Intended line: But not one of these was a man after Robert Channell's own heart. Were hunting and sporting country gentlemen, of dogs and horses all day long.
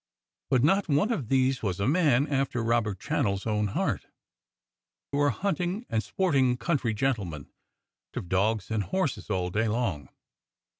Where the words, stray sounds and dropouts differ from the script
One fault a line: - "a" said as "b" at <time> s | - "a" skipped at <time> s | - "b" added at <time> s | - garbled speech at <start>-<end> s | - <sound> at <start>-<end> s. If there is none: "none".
none